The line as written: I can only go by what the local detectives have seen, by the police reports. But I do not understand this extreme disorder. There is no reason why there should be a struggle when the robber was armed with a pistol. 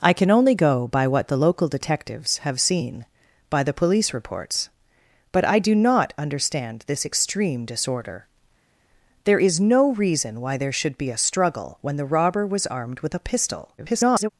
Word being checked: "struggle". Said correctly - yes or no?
yes